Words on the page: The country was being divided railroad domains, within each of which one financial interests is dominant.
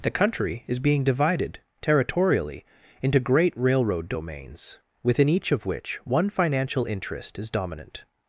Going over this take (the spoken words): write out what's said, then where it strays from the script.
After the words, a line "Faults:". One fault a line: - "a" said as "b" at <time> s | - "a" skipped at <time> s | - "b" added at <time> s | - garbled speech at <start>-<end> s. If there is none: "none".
The country is being divided territorially into great railroad domains, within each of which one financial interest is dominant.
Faults:
- "was" said as "is" at 0.7 s
- "territorially into great" added at 1.8 s
- "interests" said as "interest" at 6.9 s